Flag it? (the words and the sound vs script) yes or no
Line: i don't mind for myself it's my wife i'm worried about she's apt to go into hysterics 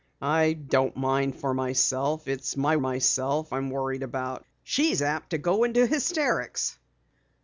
yes